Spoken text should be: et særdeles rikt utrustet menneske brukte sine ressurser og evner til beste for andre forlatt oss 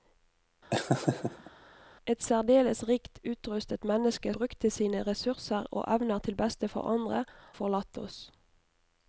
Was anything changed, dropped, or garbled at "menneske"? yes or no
no